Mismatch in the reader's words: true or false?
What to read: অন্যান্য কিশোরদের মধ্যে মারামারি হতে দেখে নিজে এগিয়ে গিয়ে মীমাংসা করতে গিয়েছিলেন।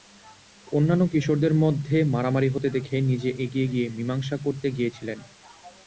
false